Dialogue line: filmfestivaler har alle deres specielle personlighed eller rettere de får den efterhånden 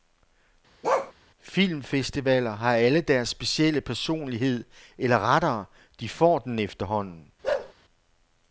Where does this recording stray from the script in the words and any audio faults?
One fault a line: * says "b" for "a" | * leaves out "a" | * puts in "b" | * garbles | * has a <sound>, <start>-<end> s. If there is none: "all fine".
* has a bark, 0.8-1.1 s
* has a bark, 7.4-7.7 s